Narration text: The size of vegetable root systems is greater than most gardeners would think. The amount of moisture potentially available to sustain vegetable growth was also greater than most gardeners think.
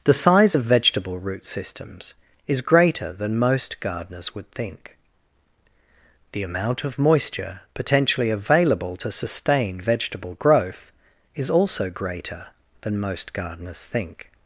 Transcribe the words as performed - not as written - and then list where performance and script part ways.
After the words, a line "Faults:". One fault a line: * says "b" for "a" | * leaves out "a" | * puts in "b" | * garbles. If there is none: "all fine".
The size of vegetable root systems is greater than most gardeners would think. The amount of moisture potentially available to sustain vegetable growth is also greater than most gardeners think.
Faults:
* says "is" for "was"